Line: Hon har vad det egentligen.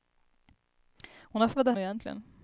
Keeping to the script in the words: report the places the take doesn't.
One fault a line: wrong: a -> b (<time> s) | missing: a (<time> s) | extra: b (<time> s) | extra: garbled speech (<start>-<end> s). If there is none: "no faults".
no faults